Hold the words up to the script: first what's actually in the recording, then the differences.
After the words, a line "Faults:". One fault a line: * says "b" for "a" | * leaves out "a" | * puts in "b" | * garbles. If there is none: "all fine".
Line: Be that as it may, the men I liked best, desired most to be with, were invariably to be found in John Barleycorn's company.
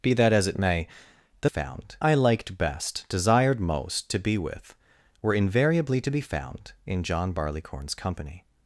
Be that as it may, the found I liked best, desired most to be with, were invariably to be found in John Barleycorn's company.
Faults:
* says "found" for "men"